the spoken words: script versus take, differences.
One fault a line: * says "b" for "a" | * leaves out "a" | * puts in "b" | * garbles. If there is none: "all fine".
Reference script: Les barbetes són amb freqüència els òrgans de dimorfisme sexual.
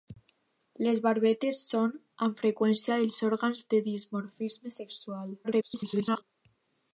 * garbles